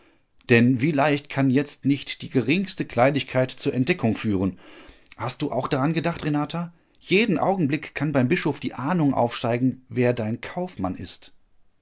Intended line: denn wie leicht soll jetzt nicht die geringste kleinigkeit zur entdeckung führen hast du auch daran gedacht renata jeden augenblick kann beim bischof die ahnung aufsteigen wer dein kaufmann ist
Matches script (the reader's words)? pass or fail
fail